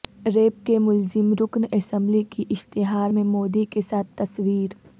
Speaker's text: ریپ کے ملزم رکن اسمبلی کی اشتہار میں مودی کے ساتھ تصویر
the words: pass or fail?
pass